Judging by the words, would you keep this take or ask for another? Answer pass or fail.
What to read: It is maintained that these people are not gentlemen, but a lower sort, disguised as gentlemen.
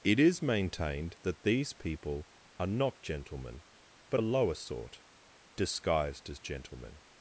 pass